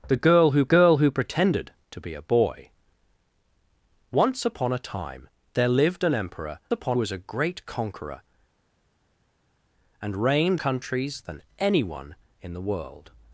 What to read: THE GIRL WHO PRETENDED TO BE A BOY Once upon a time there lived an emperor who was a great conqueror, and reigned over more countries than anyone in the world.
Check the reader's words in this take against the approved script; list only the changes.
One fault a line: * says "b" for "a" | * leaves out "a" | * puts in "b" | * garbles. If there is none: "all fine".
* puts in "GIRL WHO"
* says "upon" for "who"
* leaves out "over more"